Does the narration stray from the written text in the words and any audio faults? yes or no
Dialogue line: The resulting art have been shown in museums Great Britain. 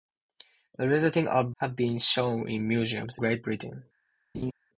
yes